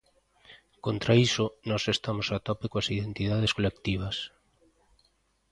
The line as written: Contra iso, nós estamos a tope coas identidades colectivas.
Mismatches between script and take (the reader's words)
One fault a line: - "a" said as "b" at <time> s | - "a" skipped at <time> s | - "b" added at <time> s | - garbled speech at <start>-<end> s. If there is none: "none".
none